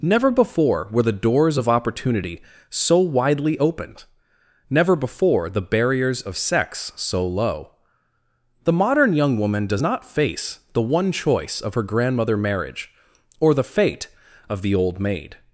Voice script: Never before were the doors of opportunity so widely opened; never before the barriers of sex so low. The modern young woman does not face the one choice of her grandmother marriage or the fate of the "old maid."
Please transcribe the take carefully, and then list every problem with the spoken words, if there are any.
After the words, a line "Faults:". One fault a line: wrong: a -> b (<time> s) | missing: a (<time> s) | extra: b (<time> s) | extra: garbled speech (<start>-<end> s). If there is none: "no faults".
Never before were the doors of opportunity so widely opened; never before the barriers of sex so low. The modern young woman does not face the one choice of her grandmother marriage or the fate of the "old maid."
Faults:
no faults